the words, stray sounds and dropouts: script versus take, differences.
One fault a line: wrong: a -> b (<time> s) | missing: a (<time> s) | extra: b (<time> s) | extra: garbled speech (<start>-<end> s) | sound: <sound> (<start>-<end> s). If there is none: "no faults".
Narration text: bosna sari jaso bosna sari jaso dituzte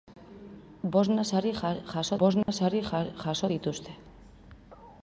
sound: dropout (2.4-2.5 s)